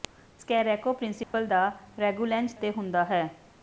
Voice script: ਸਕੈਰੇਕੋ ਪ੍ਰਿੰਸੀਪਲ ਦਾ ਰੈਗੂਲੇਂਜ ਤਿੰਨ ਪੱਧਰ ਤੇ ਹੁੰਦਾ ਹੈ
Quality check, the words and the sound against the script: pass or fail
fail